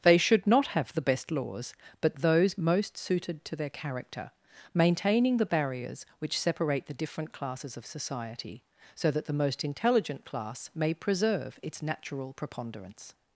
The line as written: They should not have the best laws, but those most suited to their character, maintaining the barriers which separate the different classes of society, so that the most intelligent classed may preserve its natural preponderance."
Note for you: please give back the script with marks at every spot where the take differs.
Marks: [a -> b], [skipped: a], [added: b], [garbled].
They should not have the best laws, but those most suited to their character, maintaining the barriers which separate the different classes of society, so that the most intelligent [classed -> class] may preserve its natural preponderance."